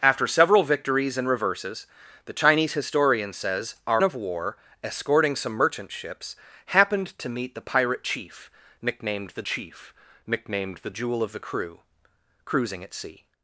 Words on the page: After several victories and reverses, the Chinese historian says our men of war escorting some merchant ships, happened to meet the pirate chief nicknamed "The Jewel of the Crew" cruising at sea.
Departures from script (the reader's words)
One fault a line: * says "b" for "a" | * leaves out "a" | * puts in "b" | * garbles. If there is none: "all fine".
* leaves out "men"
* puts in "chief nicknamed The"